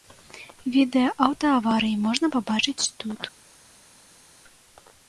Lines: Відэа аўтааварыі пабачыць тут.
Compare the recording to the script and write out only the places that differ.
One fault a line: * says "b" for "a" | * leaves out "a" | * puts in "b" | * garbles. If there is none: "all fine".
* puts in "можна"